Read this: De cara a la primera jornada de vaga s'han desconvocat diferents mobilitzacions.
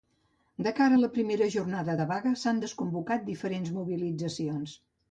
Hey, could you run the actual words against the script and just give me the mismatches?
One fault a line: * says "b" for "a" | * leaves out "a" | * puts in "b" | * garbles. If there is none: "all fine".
all fine